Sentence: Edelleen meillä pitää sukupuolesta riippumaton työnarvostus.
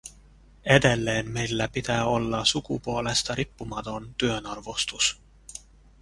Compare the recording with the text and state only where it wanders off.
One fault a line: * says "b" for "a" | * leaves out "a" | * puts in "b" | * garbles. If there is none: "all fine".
* puts in "olla"